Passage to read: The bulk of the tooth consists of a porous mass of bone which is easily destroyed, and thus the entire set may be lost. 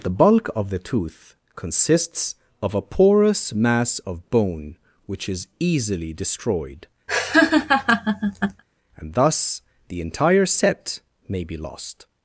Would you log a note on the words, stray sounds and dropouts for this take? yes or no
yes